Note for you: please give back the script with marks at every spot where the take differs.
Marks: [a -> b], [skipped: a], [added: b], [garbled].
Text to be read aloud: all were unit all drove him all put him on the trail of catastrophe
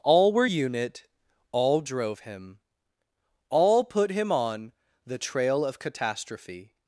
all were unit all drove him all put him on the trail of catastrophe